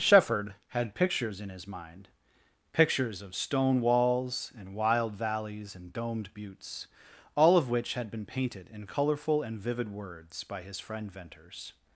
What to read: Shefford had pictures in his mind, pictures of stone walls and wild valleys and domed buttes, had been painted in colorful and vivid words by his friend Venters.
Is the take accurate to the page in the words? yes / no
no